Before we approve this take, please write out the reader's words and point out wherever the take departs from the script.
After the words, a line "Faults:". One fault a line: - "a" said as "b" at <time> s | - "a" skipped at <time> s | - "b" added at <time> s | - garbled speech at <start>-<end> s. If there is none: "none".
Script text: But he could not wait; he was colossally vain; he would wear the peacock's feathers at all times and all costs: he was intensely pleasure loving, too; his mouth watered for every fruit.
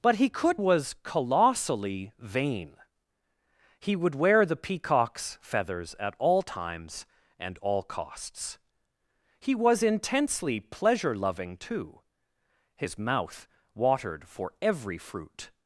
But he could was colossally vain; he would wear the peacock's feathers at all times and all costs: he was intensely pleasure loving, too; his mouth watered for every fruit.
Faults:
- "not wait he" skipped at 0.6 s